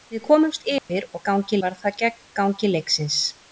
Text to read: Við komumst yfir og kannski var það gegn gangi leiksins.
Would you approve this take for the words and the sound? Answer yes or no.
no